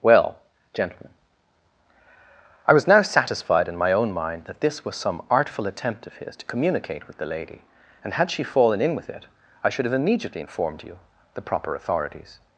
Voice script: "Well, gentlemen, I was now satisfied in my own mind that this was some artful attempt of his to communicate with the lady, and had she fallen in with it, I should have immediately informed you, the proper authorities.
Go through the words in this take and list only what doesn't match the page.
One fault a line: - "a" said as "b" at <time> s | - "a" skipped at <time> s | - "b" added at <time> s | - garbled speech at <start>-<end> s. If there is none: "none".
none